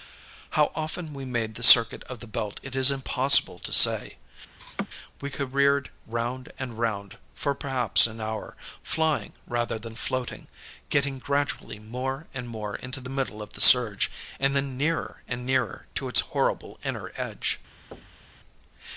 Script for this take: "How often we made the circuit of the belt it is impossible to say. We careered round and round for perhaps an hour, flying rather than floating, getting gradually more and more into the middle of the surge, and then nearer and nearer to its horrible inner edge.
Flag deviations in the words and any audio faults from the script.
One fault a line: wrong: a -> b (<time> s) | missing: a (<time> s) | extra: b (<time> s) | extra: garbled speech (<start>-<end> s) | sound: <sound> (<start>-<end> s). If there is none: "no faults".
sound: laugh (4.6-4.9 s)
sound: thud (17.9-18.4 s)